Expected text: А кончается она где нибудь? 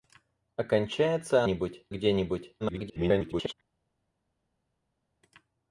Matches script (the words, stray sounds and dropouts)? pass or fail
fail